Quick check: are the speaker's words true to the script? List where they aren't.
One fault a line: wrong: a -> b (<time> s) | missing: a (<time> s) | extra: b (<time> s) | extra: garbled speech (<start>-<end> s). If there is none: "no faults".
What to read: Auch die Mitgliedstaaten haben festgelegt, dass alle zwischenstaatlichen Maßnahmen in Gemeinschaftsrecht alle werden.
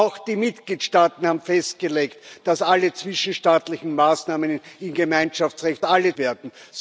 no faults